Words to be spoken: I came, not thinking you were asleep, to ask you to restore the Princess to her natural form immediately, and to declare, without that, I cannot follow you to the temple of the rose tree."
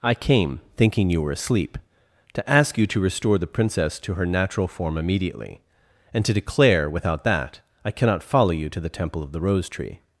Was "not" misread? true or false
true